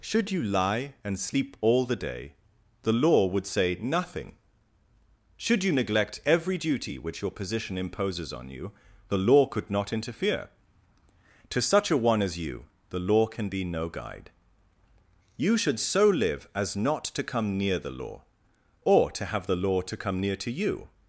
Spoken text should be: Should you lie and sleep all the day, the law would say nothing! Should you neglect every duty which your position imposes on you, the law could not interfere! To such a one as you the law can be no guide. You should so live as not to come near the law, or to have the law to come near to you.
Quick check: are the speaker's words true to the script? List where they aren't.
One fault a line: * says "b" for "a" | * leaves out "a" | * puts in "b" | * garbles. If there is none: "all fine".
all fine